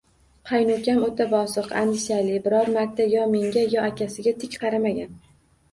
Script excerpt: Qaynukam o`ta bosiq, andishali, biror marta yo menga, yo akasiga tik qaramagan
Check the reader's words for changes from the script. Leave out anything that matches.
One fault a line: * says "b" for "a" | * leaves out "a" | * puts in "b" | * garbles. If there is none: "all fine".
all fine